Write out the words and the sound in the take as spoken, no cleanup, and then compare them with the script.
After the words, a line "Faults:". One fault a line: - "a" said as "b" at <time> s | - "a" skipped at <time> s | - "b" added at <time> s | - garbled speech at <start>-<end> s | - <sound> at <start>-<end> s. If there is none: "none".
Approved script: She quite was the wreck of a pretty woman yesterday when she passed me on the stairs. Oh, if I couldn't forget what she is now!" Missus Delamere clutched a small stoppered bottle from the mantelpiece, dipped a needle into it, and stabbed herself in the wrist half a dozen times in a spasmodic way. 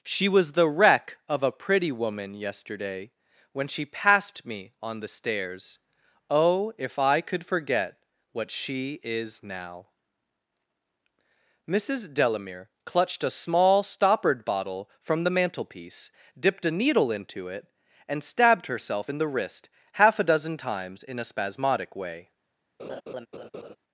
She was the wreck of a pretty woman yesterday when she passed me on the stairs. Oh, if I could forget what she is now!" Missus Delamere clutched a small stoppered bottle from the mantelpiece, dipped a needle into it, and stabbed herself in the wrist half a dozen times in a spasmodic way.
Faults:
- "quite" skipped at 0.3 s
- "couldn't" said as "could" at 7.2 s
- laugh at 22.8-23.8 s